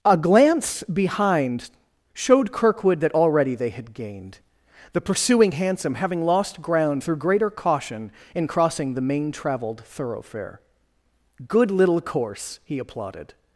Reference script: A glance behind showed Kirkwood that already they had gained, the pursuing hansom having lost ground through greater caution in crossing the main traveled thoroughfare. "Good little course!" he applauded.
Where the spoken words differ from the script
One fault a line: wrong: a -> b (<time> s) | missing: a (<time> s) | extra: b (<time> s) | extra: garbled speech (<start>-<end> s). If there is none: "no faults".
no faults